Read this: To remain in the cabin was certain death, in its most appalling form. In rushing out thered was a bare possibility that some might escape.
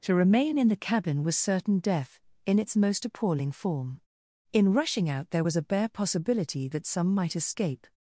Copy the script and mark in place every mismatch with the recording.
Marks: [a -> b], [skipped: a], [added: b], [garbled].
To remain in the cabin was certain death, in its most appalling form. In rushing out [thered -> there] was a bare possibility that some might escape.